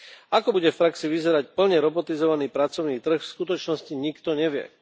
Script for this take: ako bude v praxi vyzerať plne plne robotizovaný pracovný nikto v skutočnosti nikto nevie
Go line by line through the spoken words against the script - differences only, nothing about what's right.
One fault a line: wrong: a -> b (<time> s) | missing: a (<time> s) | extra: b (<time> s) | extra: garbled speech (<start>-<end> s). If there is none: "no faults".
missing: plne (1.8 s)
wrong: nikto -> trh (3.0 s)